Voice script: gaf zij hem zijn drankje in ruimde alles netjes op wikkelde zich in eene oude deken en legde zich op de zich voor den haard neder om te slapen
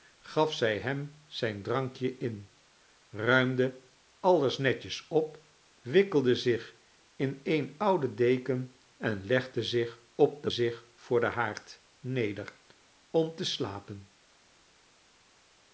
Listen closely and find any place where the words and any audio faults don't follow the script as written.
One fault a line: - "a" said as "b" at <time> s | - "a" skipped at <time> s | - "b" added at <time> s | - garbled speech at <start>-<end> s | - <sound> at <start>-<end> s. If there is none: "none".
none